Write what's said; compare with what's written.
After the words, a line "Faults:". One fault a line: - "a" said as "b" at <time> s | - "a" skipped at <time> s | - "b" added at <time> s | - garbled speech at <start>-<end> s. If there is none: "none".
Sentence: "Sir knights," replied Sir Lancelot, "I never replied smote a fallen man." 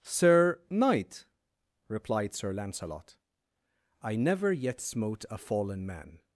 "Sir knight," replied Sir Lancelot, "I never yet smote a fallen man."
Faults:
- "knights" said as "knight" at 0.7 s
- "replied" said as "yet" at 4.5 s